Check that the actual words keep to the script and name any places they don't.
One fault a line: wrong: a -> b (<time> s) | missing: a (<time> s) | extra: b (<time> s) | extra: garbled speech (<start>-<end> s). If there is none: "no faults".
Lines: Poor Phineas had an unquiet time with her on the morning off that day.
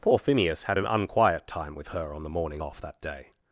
no faults